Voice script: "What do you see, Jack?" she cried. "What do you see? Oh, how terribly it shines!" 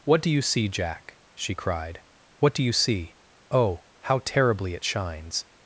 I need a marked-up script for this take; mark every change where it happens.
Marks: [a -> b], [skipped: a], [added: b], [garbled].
"What do you see, Jack?" she cried. "What do you see? Oh, how terribly it shines!"